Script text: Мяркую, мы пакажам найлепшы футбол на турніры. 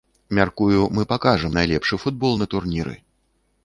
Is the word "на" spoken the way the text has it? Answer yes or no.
yes